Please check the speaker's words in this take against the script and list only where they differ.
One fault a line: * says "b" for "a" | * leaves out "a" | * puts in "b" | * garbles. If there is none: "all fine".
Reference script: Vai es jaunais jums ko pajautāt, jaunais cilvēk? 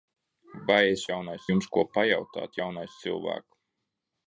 all fine